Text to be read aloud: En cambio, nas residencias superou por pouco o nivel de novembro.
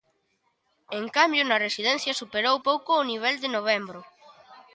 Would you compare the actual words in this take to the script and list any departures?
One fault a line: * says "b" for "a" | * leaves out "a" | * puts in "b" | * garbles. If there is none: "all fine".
* leaves out "por"